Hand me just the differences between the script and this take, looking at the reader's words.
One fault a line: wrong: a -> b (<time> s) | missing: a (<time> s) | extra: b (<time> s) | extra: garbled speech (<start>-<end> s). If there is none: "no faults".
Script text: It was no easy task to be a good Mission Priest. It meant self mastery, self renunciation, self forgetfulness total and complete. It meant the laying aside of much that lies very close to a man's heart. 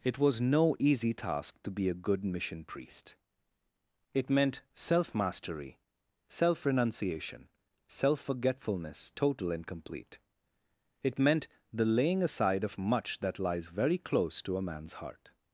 no faults